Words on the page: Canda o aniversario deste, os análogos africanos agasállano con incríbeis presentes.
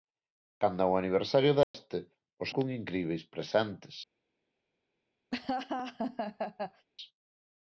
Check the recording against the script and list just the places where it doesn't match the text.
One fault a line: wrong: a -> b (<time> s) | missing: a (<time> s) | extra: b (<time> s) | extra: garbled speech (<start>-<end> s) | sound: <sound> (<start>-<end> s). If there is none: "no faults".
sound: dropout (1.6-1.7 s)
missing: análogos africanos agasállano (2.5 s)
sound: laugh (5.3-6.9 s)